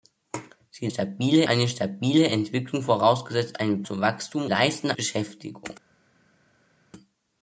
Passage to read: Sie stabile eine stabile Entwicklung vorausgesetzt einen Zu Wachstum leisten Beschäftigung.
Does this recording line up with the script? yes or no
yes